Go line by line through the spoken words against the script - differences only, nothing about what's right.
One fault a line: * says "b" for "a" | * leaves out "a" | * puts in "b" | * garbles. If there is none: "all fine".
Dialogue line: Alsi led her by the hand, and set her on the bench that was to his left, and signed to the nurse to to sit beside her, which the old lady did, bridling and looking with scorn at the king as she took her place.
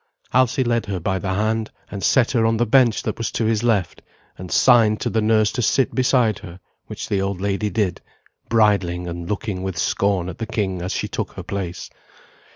* leaves out "to"